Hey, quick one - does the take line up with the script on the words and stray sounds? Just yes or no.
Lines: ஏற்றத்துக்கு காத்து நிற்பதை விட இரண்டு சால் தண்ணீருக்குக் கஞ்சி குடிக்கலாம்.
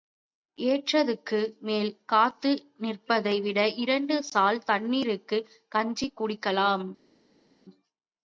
no